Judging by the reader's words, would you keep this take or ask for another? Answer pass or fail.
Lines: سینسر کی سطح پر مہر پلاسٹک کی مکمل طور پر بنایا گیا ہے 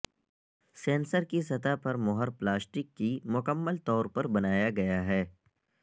pass